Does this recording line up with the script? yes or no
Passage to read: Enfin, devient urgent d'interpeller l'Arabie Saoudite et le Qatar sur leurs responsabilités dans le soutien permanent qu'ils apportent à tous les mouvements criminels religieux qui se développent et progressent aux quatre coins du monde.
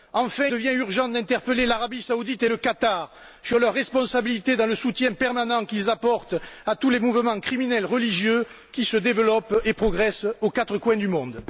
yes